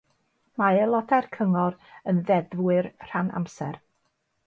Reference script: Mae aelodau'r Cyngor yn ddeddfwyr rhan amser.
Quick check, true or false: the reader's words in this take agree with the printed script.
true